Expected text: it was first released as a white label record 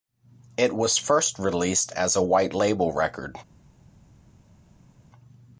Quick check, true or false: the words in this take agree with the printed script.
true